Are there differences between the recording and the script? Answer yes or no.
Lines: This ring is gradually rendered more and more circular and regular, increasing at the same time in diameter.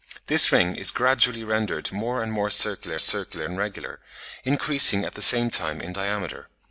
yes